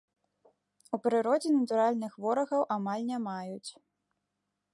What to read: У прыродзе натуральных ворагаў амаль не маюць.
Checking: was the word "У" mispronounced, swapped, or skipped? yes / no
no